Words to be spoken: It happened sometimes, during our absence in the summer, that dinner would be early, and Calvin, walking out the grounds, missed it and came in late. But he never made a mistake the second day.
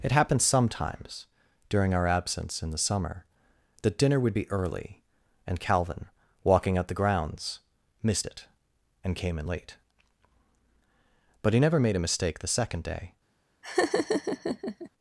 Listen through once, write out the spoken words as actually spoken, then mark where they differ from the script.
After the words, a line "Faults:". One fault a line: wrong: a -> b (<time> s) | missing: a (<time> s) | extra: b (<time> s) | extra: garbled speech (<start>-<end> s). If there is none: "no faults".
It happened sometimes, during our absence in the summer, that dinner would be early, and Calvin, walking out the grounds, missed it and came in late. But he never made a mistake the second day.
Faults:
no faults